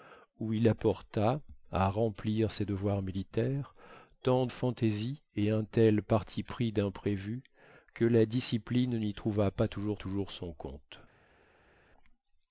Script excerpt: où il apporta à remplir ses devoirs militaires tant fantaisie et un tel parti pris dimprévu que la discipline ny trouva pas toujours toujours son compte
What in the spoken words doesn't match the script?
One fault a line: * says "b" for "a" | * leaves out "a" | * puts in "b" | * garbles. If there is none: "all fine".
all fine